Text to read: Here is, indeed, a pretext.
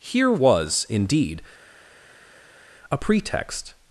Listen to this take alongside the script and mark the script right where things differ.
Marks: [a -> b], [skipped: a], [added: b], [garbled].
Here [is, -> was] indeed, a pretext.